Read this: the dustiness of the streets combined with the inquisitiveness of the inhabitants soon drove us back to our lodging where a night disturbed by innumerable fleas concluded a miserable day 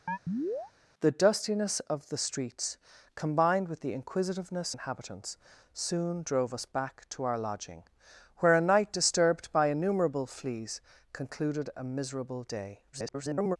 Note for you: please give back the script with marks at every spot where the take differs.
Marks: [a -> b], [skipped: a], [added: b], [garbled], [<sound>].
[chirp] the dustiness of the streets combined with the inquisitiveness [skipped: of the] inhabitants soon drove us back to our lodging where a night disturbed by innumerable fleas concluded a miserable day [garbled]